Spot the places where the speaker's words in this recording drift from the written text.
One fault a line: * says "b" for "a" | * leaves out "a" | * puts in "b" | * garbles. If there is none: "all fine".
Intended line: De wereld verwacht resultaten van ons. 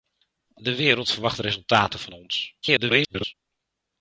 * garbles